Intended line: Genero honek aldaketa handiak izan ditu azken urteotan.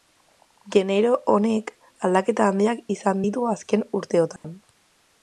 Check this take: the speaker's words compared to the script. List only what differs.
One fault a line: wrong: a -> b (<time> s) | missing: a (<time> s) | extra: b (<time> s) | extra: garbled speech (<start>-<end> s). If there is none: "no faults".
no faults